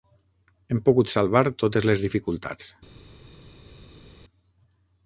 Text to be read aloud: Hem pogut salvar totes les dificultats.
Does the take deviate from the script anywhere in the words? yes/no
no